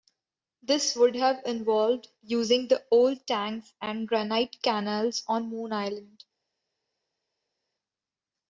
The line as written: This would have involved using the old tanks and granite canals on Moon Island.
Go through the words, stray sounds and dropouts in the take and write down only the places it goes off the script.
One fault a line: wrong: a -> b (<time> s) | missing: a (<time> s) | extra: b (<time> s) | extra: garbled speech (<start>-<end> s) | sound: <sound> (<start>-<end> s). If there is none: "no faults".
no faults